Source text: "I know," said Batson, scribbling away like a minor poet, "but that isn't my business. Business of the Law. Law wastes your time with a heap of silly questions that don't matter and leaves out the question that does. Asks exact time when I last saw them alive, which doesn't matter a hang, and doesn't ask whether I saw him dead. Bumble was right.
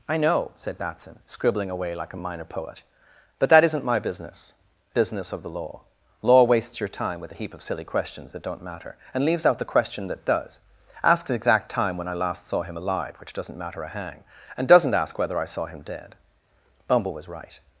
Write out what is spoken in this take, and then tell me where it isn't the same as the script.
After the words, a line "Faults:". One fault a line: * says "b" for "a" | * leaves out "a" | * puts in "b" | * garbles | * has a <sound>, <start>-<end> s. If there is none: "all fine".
"I know," said Batson, scribbling away like a minor poet, "but that isn't my business. Business of the Law. Law wastes your time with a heap of silly questions that don't matter and leaves out the question that does. Asks exact time when I last saw him alive, which doesn't matter a hang, and doesn't ask whether I saw him dead. Bumble was right.
Faults:
* says "him" for "them"